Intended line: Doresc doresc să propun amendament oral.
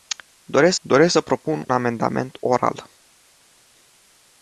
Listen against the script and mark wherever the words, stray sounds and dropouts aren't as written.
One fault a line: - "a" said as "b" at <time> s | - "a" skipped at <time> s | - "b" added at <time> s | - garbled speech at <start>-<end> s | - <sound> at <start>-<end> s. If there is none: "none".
none